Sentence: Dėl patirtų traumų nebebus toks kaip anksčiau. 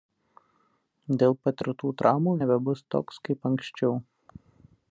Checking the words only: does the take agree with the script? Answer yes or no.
yes